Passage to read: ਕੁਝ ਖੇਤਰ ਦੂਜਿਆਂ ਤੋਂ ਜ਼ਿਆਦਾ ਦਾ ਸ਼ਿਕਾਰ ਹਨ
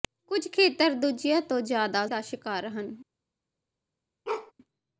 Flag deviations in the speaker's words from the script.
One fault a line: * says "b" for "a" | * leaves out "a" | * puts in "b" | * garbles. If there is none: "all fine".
all fine